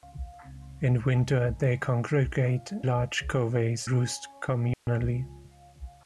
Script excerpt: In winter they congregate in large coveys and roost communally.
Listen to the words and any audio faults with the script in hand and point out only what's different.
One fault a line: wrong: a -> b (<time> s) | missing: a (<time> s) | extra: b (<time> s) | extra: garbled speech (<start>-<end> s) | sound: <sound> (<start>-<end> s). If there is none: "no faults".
missing: in (2.7 s)
missing: and (3.9 s)
sound: dropout (4.7-4.9 s)